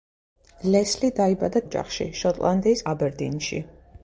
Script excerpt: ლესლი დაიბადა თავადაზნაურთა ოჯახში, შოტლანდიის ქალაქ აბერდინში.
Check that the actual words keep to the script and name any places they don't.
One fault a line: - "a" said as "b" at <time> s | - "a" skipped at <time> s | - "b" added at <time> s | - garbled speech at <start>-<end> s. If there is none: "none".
- "თავადაზნაურთა" skipped at 1.6 s
- "ქალაქ" skipped at 2.9 s